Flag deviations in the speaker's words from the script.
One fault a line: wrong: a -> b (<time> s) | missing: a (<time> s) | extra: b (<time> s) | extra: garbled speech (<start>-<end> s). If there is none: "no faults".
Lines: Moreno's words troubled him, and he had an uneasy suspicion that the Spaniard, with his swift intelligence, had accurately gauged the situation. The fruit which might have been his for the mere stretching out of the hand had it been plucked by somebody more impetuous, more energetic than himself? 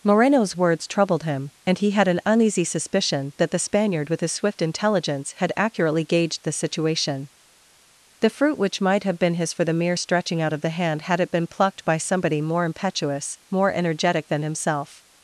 no faults